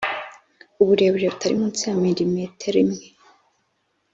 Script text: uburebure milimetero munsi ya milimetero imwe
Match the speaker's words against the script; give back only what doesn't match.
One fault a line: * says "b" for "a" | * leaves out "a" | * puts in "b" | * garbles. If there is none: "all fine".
* says "butari" for "milimetero"